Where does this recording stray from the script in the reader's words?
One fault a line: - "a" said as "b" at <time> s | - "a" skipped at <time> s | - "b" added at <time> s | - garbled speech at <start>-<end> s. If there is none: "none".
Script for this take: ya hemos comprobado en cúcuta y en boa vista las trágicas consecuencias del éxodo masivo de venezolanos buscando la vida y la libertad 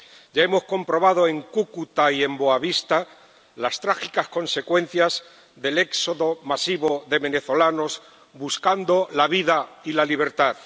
none